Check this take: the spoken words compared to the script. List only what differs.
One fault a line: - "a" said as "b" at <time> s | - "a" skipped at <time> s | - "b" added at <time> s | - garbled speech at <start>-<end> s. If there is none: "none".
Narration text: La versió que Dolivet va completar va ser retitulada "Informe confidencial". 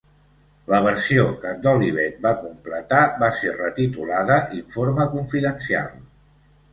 none